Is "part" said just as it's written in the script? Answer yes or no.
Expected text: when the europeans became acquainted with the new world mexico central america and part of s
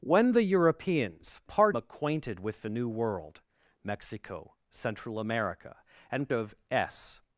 no